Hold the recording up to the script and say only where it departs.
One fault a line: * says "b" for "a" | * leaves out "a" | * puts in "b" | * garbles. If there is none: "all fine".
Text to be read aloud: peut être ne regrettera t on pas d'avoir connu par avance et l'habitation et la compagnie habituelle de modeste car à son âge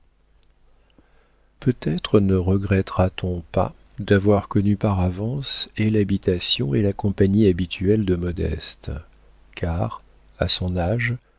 all fine